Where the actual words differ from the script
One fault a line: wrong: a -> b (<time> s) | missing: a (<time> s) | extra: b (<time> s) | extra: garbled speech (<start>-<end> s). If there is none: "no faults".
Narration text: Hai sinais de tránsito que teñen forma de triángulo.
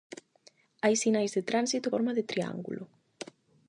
missing: que teñen (1.9 s)